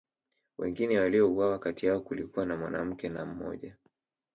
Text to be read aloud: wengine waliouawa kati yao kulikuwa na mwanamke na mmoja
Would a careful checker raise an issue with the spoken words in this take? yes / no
no